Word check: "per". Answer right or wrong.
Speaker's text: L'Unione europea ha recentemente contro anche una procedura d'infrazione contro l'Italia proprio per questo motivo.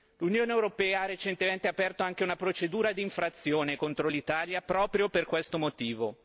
right